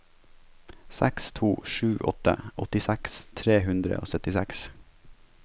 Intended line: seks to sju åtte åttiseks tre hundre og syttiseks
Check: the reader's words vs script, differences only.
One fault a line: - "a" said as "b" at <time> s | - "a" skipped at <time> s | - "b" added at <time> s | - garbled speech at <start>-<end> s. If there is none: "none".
none